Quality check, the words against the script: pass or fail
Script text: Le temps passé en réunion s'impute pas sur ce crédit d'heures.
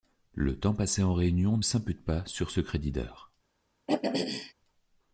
pass